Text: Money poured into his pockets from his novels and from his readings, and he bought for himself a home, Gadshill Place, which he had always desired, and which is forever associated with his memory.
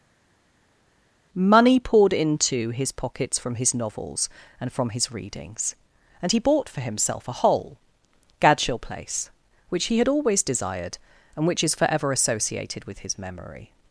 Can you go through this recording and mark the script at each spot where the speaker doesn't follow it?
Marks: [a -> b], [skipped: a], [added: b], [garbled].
Money poured into his pockets from his novels and from his readings, and he bought for himself a [home, -> hole] Gadshill Place, which he had always desired, and which is forever associated with his memory.